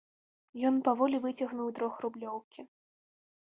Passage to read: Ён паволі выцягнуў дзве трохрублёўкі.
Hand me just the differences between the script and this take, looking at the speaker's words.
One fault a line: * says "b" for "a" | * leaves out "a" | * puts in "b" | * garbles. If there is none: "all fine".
* leaves out "дзве"